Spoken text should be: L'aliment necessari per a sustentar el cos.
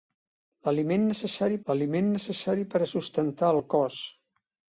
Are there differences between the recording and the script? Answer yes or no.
yes